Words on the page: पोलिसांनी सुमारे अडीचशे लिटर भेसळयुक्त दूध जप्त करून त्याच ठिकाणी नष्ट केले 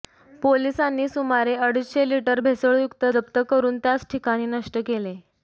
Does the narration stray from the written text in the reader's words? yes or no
yes